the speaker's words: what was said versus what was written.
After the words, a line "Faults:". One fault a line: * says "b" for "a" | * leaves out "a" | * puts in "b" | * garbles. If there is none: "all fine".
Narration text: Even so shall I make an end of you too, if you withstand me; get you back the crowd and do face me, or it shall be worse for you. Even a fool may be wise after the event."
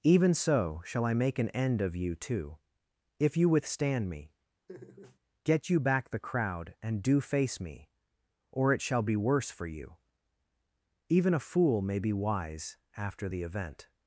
Even so shall I make an end of you too, if you withstand me; get you back the crowd and do face me, or it shall be worse for you. Even a fool may be wise after the event."
Faults:
all fine